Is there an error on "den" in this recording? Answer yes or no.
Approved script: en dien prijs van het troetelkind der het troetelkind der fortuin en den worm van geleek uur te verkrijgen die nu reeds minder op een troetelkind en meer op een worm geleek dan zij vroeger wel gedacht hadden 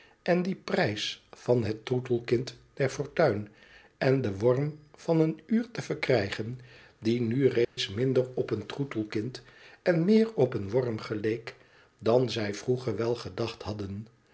no